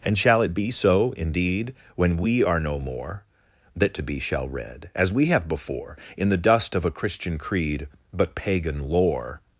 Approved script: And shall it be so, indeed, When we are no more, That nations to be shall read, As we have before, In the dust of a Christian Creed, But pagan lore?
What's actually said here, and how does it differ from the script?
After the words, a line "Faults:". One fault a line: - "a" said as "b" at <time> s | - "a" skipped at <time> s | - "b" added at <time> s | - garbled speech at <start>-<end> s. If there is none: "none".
And shall it be so, indeed, When we are no more, That to be shall read, As we have before, In the dust of a Christian Creed, But pagan lore?
Faults:
- "nations" skipped at 4.0 s